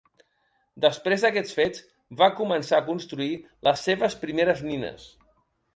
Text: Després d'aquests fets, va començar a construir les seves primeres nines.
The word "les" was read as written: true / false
true